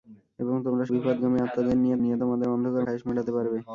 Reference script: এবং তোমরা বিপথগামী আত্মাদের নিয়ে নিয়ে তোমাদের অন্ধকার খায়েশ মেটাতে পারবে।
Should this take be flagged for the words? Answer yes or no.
no